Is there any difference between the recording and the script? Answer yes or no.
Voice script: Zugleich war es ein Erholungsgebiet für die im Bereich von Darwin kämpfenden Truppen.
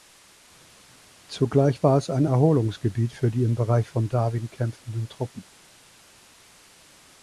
no